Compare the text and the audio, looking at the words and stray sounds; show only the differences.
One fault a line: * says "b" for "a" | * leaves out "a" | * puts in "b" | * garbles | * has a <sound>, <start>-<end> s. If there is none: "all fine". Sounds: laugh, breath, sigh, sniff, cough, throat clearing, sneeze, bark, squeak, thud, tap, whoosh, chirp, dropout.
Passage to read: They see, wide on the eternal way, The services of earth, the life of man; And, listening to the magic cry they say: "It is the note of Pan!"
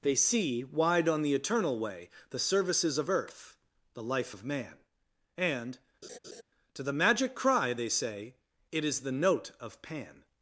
* leaves out "listening"
* has a laugh, 6.0-6.4 s